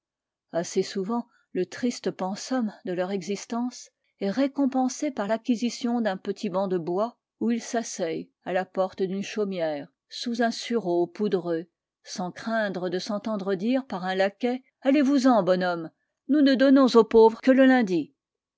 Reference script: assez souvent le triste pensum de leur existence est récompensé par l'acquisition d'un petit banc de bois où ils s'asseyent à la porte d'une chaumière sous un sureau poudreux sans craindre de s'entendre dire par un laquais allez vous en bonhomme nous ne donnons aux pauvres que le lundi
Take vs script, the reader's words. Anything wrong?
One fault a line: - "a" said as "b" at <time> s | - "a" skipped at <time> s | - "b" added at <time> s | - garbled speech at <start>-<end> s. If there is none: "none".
none